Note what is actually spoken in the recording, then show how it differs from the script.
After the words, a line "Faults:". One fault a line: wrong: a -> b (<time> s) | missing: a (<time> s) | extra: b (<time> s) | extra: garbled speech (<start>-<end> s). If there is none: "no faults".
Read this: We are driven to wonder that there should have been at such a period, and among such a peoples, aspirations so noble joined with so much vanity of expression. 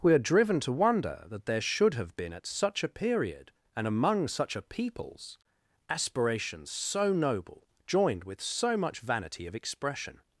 We are driven to wonder that there should have been at such a period, and among such a peoples, aspirations so noble joined with so much vanity of expression.
Faults:
no faults